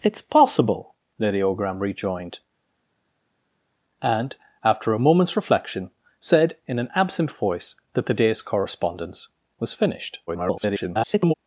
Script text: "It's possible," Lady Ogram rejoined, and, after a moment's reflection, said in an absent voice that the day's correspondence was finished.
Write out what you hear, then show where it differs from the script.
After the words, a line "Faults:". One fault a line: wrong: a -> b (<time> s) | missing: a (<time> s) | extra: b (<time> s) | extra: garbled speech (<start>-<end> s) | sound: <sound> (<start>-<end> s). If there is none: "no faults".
"It's possible," Lady Ogram rejoined, and, after a moment's reflection, said in an absent voice that the day's correspondence was finished. [garbled]
Faults:
extra: garbled speech (10.3-11.3 s)